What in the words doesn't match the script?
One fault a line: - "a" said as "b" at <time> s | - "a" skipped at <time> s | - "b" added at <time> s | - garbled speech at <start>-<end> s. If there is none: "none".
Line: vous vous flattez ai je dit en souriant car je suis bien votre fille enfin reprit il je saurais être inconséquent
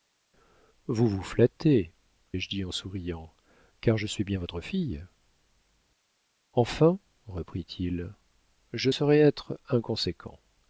none